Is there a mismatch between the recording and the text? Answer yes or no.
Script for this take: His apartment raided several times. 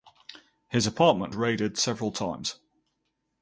no